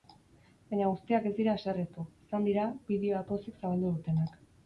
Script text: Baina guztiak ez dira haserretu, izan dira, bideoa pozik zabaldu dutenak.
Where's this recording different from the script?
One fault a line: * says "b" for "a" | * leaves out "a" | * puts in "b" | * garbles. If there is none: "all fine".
all fine